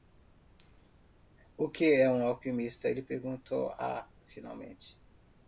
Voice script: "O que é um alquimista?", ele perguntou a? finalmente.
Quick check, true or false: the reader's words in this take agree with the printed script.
true